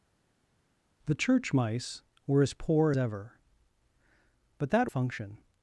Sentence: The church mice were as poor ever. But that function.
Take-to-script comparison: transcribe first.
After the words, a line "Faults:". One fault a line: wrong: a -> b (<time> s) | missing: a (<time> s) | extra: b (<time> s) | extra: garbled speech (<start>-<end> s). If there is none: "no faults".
The church mice were as poor ever. But that function.
Faults:
no faults